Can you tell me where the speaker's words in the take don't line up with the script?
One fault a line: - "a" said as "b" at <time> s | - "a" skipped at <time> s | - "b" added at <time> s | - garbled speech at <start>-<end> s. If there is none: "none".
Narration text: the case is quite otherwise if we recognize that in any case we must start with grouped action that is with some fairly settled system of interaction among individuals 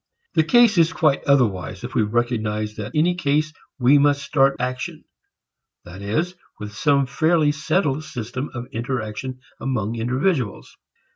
- "in" skipped at 3.0 s
- "with grouped" skipped at 4.6 s